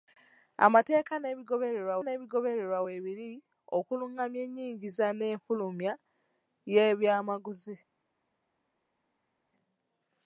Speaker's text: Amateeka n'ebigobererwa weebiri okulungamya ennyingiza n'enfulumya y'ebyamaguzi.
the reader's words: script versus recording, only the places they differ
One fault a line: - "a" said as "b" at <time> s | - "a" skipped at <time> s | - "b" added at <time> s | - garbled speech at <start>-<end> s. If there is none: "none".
- "n'ebigobererwa" added at 2.0 s